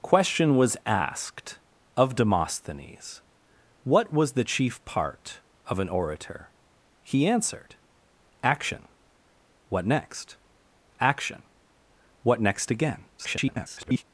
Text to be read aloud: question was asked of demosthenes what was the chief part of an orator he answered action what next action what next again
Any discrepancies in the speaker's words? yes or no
yes